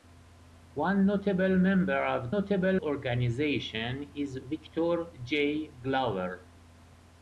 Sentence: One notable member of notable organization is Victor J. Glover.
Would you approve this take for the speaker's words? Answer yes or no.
yes